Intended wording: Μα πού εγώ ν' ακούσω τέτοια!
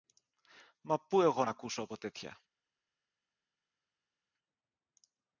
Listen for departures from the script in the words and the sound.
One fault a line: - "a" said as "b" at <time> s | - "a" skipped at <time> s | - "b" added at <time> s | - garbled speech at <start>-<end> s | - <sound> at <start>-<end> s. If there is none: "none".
- "από" added at 1.8 s